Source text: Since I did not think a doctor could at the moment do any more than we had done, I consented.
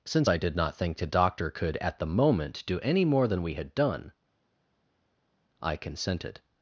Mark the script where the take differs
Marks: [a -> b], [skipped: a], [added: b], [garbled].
Since I did not think [a -> the] doctor could at the moment do any more than we had done, I consented.